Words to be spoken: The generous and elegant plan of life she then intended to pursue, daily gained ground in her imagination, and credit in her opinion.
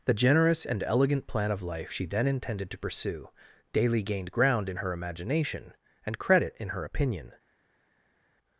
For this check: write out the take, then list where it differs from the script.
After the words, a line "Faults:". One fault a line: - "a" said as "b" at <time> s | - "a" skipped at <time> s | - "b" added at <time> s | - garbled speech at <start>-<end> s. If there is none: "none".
The generous and elegant plan of life she then intended to pursue, daily gained ground in her imagination, and credit in her opinion.
Faults:
none